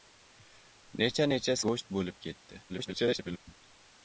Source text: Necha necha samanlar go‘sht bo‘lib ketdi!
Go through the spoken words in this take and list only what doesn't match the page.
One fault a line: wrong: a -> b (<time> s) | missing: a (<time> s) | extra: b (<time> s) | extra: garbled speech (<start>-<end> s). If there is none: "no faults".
missing: samanlar (1.6 s)
extra: garbled speech (2.7-3.4 s)